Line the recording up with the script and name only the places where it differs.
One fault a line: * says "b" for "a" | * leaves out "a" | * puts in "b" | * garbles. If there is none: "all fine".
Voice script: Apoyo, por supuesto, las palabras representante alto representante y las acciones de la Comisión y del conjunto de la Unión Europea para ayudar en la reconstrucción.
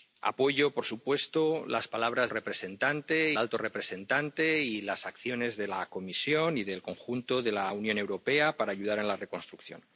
all fine